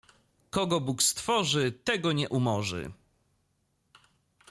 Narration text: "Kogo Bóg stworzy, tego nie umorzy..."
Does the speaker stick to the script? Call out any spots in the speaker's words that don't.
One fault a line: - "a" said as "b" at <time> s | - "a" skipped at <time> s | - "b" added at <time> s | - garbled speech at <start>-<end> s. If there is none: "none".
none